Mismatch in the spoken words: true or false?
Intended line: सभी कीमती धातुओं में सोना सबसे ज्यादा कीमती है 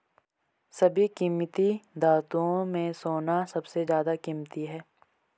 false